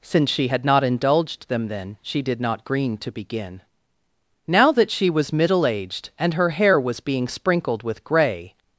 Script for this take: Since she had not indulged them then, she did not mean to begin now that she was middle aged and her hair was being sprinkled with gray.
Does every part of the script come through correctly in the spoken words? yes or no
no